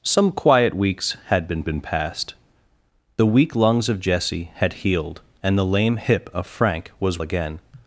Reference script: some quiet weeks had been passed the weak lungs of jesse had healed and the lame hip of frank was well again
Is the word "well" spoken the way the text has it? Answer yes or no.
no